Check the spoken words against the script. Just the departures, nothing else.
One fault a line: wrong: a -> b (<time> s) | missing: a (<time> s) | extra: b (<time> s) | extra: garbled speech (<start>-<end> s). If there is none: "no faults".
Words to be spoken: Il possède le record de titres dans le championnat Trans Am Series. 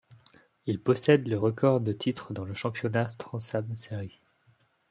no faults